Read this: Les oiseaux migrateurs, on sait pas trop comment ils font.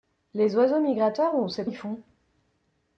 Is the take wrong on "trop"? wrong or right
wrong